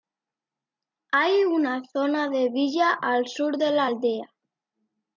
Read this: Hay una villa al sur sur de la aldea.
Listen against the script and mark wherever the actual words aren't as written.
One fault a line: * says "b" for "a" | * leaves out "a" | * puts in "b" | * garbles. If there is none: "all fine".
* puts in "zona de"
* leaves out "sur"